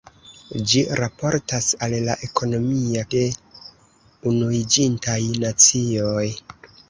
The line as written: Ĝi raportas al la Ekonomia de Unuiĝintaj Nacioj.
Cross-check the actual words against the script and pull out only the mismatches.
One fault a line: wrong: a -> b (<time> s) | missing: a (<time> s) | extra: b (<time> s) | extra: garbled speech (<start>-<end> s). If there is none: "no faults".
no faults